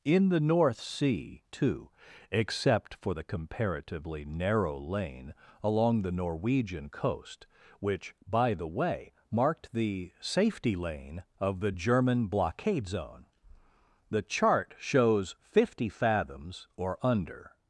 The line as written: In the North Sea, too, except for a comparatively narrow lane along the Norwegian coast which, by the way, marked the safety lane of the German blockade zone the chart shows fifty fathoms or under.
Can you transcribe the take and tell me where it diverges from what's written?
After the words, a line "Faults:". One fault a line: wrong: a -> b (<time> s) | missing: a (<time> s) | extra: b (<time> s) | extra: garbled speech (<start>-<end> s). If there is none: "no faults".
In the North Sea, too, except for the comparatively narrow lane along the Norwegian coast which, by the way, marked the safety lane of the German blockade zone the chart shows fifty fathoms or under.
Faults:
wrong: a -> the (3.1 s)